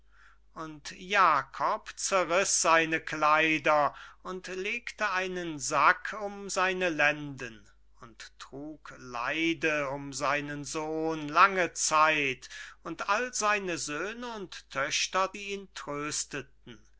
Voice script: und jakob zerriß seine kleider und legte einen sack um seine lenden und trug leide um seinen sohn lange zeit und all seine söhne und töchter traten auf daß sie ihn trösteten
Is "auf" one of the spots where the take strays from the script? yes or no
yes